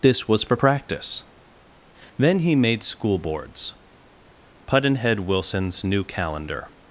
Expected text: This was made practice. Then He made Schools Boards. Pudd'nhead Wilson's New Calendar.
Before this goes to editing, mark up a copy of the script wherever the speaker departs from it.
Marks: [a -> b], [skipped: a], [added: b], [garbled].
This was [made -> for] practice. Then He made [Schools -> School] Boards. Pudd'nhead Wilson's New Calendar.